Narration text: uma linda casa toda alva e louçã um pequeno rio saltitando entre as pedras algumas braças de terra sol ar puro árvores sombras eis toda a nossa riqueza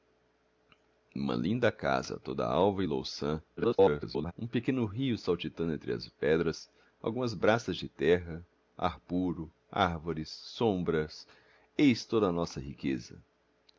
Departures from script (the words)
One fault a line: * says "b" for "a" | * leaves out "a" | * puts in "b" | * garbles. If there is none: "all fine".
* garbles
* leaves out "sol"